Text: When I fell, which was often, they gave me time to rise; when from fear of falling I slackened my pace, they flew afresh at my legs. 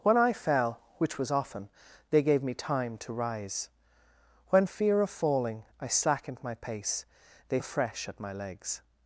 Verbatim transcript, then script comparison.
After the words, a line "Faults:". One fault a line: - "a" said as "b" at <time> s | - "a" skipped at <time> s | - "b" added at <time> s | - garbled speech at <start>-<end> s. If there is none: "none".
When I fell, which was often, they gave me time to rise; when fear of falling I slackened my pace, they afresh at my legs.
Faults:
- "from" skipped at 4.7 s
- "flew" skipped at 7.6 s